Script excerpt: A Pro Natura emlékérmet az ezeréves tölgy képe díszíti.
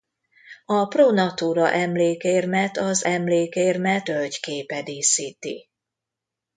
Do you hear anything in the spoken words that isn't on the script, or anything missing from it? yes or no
yes